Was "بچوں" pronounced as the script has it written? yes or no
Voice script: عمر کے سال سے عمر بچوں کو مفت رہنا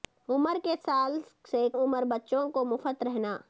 yes